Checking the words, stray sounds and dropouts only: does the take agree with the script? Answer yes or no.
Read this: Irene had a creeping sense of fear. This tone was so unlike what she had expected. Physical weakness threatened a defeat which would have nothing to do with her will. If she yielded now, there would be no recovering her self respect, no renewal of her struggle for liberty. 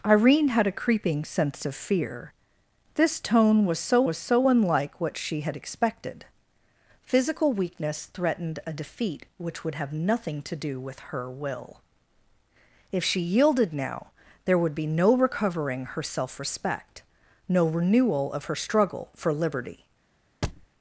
no